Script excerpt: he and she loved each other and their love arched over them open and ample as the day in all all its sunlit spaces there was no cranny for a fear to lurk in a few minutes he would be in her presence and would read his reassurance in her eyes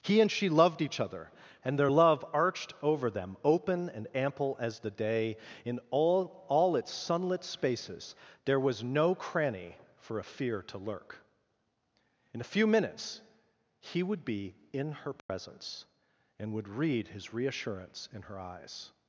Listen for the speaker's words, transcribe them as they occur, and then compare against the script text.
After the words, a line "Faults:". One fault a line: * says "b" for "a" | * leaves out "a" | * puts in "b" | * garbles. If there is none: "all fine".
he and she loved each other and their love arched over them open and ample as the day in all all its sunlit spaces there was no cranny for a fear to lurk in a few minutes he would be in her presence and would read his reassurance in her eyes
Faults:
all fine